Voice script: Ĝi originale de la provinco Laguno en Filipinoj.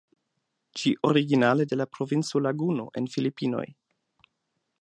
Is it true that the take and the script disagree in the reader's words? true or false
false